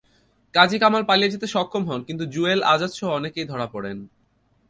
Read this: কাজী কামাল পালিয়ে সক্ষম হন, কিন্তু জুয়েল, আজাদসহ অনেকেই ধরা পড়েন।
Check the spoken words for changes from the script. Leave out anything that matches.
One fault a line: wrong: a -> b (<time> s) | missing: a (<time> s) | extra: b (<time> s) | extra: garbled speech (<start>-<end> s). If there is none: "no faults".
extra: যেতে (1.3 s)